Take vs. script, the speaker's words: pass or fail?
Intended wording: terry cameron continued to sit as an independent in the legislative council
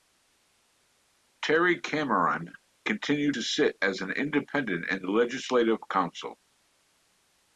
pass